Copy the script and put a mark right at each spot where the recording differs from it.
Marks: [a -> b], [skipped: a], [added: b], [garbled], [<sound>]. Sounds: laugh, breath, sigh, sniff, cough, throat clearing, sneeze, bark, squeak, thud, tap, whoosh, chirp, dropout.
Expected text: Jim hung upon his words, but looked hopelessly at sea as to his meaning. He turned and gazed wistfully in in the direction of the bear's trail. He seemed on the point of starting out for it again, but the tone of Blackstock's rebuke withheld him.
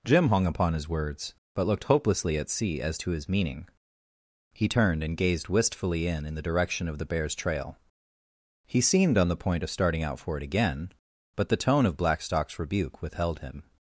Jim hung upon his words, but looked hopelessly at sea as to his meaning. He turned and gazed wistfully in in the direction of the bear's trail. He seemed on the point of starting out for it again, but the tone of Blackstock's rebuke withheld him.